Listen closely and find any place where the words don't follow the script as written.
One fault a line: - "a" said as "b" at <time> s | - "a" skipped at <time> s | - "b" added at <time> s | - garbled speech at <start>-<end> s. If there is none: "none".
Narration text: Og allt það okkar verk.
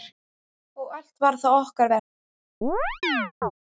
- "var" added at 1.2 s